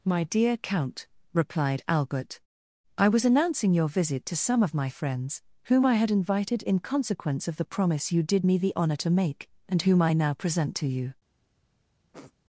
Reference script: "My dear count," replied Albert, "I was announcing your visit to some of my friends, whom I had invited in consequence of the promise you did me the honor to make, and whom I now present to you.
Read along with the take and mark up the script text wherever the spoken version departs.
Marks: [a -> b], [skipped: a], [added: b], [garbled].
"My dear count," replied Albert, "I was announcing your visit to some of my friends, whom I had invited in consequence of the promise you did me the honor to make, and whom I now present to you.